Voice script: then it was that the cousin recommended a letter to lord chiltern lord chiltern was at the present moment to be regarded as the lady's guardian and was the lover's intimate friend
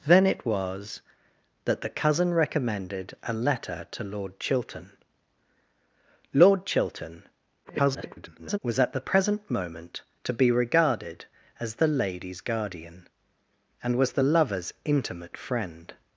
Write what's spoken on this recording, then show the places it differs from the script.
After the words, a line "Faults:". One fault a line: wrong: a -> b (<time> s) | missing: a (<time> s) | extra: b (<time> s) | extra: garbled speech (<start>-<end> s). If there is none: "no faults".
then it was that the cousin recommended a letter to lord chiltern lord chiltern [garbled] was at the present moment to be regarded as the lady's guardian and was the lover's intimate friend
Faults:
extra: garbled speech (7.6-8.6 s)